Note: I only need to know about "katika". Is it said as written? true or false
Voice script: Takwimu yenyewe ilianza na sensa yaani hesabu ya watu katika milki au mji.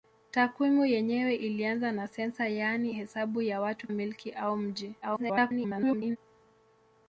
false